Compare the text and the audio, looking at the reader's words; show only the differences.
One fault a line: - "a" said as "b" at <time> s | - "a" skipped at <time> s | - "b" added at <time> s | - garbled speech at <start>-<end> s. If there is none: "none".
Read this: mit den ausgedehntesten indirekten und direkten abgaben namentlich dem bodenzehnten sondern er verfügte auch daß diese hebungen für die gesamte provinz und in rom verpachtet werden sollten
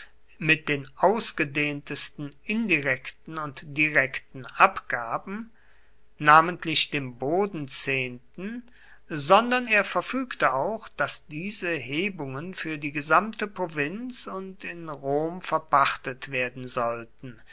none